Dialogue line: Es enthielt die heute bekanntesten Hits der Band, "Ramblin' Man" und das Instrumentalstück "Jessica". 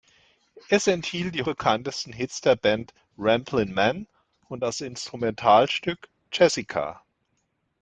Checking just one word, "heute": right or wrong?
wrong